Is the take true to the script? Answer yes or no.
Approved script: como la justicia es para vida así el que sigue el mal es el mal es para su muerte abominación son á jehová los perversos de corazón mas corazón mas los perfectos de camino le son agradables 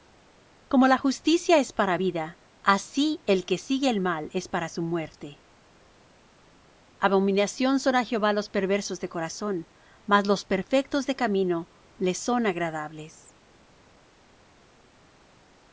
no